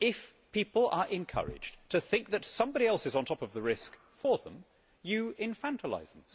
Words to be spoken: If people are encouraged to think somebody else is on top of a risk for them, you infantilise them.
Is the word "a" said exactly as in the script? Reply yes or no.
no